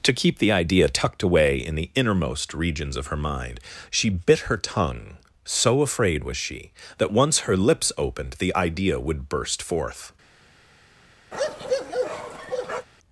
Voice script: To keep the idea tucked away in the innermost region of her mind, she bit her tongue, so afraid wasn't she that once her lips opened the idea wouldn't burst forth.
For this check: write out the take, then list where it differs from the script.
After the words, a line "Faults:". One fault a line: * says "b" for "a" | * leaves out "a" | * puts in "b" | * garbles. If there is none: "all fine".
To keep the idea tucked away in the innermost regions of her mind, she bit her tongue, so afraid was she that once her lips opened the idea would burst forth.
Faults:
* says "regions" for "region"
* says "was" for "wasn't"
* says "would" for "wouldn't"